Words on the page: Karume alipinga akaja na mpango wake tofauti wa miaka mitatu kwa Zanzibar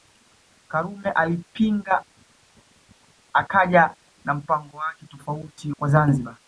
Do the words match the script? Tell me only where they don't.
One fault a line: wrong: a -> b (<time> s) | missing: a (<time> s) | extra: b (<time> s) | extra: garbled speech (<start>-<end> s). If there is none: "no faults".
missing: wa miaka mitatu (5.7 s)